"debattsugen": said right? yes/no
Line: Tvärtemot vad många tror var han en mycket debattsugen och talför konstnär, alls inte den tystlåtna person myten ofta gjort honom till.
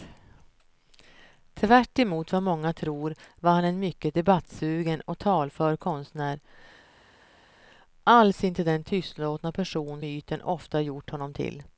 yes